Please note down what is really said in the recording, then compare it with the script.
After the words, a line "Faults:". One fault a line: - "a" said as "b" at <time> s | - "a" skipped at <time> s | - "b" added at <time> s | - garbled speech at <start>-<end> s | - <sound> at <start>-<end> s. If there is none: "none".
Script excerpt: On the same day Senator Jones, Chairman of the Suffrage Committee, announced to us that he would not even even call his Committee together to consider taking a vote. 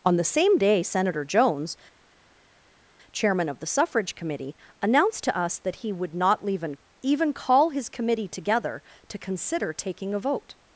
On the same day Senator Jones, Chairman of the Suffrage Committee, announced to us that he would not even even call his Committee together to consider taking a vote.
Faults:
none